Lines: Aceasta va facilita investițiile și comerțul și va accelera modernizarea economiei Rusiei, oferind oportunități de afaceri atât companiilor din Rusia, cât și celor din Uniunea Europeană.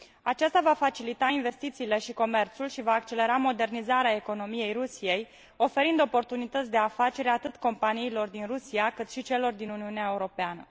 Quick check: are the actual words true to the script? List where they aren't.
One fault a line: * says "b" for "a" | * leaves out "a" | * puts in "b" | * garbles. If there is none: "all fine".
all fine